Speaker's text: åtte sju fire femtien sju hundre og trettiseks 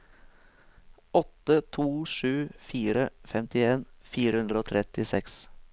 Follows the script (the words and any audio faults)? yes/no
no